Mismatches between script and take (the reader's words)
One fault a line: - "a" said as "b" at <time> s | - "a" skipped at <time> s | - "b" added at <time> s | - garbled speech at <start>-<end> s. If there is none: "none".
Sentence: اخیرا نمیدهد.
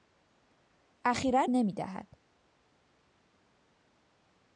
none